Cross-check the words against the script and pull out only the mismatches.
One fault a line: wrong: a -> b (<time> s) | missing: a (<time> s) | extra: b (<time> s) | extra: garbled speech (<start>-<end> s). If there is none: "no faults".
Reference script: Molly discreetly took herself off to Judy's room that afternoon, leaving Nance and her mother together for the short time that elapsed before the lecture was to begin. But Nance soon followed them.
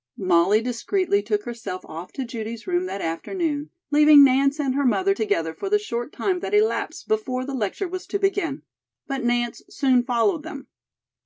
no faults